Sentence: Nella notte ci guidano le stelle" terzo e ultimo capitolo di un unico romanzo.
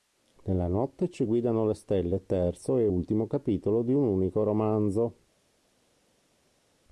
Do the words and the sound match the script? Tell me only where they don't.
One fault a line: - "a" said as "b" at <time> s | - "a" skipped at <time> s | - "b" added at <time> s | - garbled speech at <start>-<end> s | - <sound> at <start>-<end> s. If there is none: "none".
none